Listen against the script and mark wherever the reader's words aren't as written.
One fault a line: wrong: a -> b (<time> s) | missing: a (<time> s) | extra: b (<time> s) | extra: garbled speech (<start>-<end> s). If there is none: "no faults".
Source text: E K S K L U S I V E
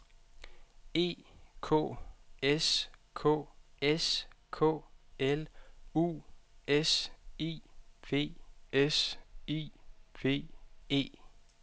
extra: S K (3.8 s)
extra: S I V (8.7 s)